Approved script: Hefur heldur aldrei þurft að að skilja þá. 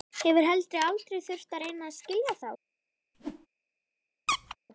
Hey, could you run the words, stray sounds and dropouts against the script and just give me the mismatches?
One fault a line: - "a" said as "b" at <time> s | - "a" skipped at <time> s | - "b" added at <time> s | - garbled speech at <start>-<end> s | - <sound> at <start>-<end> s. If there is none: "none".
- "reyna" added at 1.6 s
- whoosh at 3.1-3.5 s
- squeak at 4.3-4.6 s